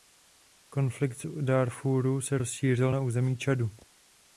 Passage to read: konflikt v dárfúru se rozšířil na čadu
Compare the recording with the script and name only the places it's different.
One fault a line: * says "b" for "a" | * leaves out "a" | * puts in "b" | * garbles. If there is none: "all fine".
* puts in "území"